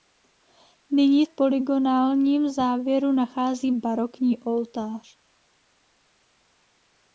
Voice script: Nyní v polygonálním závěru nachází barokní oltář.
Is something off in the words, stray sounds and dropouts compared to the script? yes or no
no